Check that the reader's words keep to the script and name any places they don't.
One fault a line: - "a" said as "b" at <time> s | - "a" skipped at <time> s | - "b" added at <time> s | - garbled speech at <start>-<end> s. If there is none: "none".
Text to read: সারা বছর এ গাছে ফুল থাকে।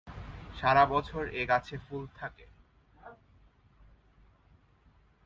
none